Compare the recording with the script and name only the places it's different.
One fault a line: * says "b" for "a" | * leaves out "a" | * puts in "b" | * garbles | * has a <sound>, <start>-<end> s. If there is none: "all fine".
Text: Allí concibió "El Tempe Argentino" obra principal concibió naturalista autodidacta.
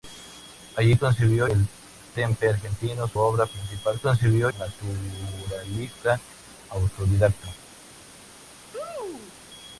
* has a sneeze, 8.7-9.4 s